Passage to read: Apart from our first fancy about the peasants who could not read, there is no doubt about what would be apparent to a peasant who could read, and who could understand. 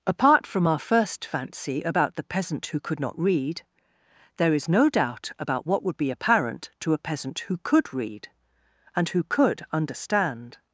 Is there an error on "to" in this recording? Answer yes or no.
no